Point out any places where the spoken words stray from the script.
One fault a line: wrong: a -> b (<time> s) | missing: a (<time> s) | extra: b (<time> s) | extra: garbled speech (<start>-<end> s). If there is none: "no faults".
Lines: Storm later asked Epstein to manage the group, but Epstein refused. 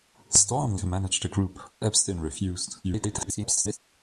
missing: later asked Epstein (0.8 s)
missing: but (1.6 s)
extra: garbled speech (2.8-3.8 s)